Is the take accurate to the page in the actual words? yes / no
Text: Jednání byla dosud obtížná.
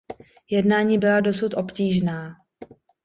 yes